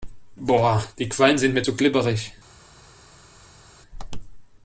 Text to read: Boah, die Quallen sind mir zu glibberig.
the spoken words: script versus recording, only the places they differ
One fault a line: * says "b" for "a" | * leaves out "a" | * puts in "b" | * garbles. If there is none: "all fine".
all fine